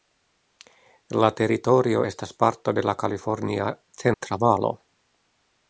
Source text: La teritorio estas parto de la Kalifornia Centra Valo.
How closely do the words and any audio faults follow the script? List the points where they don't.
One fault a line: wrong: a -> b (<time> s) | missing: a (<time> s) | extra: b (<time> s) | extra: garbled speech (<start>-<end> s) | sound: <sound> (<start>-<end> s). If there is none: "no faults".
sound: dropout (4.1-4.2 s)